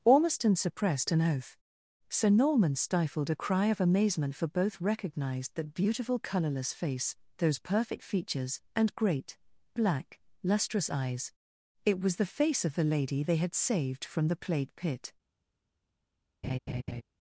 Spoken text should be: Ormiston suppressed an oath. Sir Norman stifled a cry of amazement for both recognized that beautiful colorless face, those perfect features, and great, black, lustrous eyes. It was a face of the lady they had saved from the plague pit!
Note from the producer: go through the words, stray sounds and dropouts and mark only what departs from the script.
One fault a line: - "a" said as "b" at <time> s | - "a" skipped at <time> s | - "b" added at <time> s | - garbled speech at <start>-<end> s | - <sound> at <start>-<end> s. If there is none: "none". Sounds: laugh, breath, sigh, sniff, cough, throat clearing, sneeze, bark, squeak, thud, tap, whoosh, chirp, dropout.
- "a" said as "the" at 12.2 s
- laugh at 16.4-17.0 s